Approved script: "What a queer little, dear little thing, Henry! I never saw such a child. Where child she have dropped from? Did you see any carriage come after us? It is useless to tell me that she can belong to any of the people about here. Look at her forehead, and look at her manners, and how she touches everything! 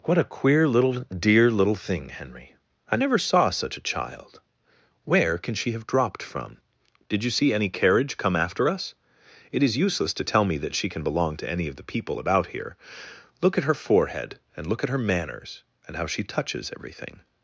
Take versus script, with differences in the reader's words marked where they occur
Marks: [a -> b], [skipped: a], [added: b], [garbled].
"What a queer little, dear little thing, Henry! I never saw such a child. Where [child -> can] she have dropped from? Did you see any carriage come after us? It is useless to tell me that she can belong to any of the people about here. Look at her forehead, and look at her manners, and how she touches everything!